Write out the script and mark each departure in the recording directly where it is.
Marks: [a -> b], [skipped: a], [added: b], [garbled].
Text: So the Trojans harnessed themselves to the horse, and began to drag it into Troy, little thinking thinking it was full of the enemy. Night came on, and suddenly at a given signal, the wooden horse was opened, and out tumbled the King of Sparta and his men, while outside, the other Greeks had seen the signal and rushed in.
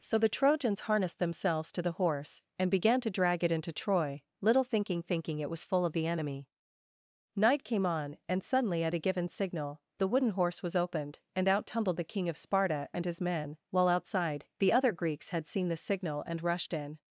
So the Trojans harnessed themselves to the horse, and began to drag it into Troy, little thinking thinking it was full of the enemy. Night came on, and suddenly at a given signal, the wooden horse was opened, and out tumbled the King of Sparta and his men, while outside, the other Greeks had seen the signal and rushed in.